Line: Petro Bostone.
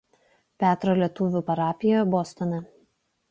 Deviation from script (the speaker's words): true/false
true